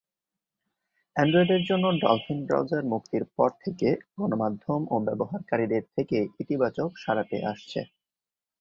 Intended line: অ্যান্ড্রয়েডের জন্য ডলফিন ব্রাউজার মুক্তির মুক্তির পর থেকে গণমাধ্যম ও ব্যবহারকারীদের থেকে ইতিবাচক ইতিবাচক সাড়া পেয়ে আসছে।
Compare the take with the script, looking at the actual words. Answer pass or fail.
fail